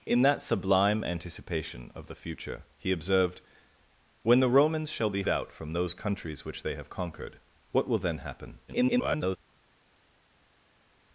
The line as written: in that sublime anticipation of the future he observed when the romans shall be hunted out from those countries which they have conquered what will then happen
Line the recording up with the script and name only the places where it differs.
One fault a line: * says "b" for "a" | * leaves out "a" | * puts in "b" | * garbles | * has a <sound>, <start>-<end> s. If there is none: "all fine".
* leaves out "hunted"
* garbles